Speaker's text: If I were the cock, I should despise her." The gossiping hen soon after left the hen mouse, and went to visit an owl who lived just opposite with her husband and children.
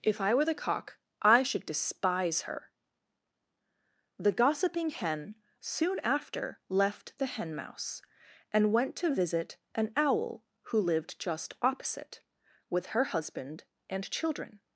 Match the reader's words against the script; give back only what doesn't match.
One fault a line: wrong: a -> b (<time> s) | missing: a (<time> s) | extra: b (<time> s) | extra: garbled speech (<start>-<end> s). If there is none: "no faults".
no faults